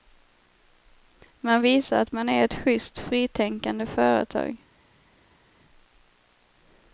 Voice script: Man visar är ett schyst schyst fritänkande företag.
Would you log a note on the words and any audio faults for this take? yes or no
yes